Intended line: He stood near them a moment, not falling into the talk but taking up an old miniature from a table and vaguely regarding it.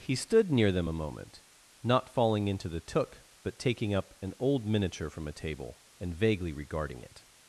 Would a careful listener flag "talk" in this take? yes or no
yes